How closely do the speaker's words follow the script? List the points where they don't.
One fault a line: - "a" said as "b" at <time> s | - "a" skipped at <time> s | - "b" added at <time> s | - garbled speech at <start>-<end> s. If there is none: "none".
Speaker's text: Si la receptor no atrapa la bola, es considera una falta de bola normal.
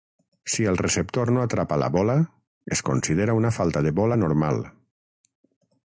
- "la" said as "el" at 0.7 s